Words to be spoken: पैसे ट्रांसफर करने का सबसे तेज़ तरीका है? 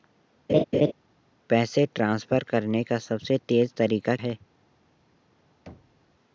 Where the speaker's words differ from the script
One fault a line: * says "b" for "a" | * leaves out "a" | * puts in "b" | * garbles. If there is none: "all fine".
all fine